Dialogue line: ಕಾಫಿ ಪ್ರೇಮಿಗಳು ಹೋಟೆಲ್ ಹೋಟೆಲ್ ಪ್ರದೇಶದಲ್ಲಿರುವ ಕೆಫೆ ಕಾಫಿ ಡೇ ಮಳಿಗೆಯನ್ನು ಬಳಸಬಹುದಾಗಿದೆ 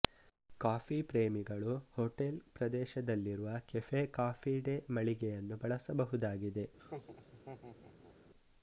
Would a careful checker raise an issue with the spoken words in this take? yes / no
yes